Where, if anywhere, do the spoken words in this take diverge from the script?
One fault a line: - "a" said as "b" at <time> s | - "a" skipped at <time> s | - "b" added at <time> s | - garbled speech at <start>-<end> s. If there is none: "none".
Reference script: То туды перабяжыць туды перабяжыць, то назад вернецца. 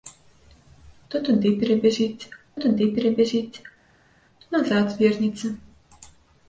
none